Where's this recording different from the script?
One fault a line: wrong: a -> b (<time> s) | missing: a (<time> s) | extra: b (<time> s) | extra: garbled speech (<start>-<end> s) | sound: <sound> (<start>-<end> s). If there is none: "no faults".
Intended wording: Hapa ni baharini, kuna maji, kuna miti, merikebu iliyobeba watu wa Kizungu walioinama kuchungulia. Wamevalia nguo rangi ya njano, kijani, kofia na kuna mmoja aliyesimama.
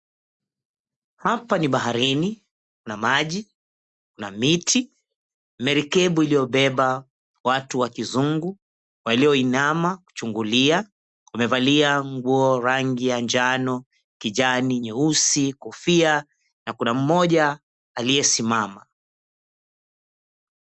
extra: nyeusi (14.8 s)